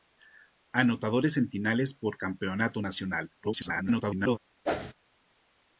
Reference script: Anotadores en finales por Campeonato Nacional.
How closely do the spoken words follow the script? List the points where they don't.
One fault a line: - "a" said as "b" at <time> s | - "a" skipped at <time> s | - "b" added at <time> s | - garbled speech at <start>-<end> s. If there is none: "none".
- garbled speech at 3.4-4.4 s